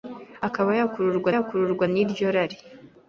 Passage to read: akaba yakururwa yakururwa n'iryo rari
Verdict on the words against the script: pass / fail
pass